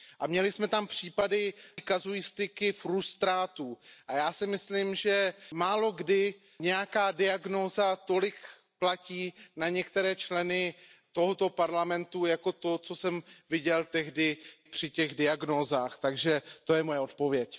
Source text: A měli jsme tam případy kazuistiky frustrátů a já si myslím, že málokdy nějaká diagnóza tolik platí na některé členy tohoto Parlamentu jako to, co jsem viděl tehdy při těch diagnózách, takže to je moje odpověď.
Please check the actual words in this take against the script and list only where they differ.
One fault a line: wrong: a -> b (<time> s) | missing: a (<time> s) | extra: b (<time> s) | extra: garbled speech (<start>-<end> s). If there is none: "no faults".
no faults